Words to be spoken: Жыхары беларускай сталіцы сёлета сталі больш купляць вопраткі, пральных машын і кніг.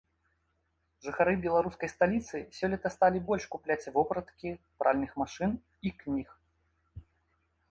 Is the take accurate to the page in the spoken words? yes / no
yes